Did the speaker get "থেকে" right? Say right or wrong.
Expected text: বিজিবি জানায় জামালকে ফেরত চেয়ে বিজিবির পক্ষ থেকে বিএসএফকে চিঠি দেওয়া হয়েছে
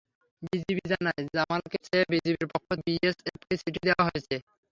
wrong